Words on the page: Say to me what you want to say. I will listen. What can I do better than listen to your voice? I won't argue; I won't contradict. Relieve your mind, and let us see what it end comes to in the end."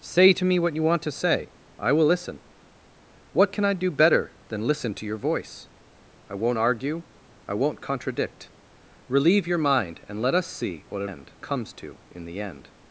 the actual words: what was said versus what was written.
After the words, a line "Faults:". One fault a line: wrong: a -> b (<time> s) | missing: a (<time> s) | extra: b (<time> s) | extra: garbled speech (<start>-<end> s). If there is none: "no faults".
Say to me what you want to say. I will listen. What can I do better than listen to your voice? I won't argue; I won't contradict. Relieve your mind, and let us see what it end comes to in the end."
Faults:
no faults